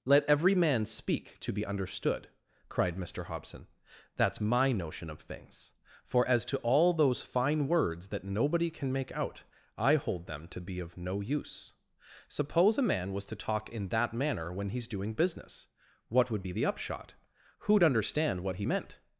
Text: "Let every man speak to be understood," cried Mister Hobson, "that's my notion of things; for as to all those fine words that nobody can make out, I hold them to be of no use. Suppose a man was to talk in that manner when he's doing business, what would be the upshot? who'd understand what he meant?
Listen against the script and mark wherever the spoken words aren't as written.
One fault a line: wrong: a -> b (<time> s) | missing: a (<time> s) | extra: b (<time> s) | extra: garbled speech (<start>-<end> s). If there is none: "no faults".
no faults